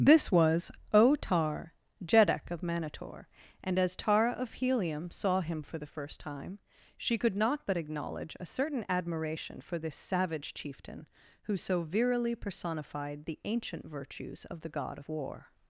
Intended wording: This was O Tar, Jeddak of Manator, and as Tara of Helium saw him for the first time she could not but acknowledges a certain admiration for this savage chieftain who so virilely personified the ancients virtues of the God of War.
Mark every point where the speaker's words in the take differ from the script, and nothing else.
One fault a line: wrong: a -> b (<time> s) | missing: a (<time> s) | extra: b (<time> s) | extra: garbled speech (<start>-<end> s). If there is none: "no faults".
wrong: acknowledges -> acknowledge (7.8 s)
wrong: ancients -> ancient (13.4 s)